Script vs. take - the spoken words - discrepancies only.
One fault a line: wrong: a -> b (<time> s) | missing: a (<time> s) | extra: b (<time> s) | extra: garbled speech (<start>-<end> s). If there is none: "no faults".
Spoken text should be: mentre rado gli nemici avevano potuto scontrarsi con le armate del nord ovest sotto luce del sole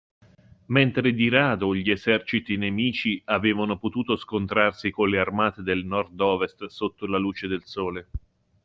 extra: di (1.1 s)
extra: eserciti (1.9 s)
extra: la (7.0 s)